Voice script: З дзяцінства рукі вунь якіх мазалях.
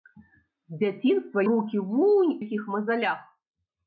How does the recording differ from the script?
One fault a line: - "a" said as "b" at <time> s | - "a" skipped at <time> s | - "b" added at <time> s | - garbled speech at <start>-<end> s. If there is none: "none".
none